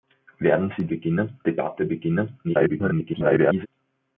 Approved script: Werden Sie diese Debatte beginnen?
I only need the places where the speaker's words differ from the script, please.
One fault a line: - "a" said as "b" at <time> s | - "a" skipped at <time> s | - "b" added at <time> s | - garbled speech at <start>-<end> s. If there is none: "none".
- "diese" said as "beginnen" at 0.9 s
- garbled speech at 2.4-3.7 s